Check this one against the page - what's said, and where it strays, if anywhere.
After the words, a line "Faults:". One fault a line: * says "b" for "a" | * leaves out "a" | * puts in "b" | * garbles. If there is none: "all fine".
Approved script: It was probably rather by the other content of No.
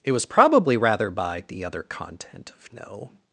It was probably rather by the other content of No.
Faults:
all fine